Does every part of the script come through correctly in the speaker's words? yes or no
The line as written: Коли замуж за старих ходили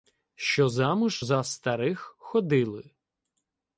no